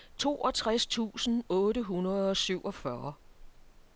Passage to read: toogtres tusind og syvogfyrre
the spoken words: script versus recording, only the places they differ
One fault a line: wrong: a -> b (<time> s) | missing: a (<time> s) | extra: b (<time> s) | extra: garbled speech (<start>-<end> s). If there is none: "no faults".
extra: otte hundrede (1.5 s)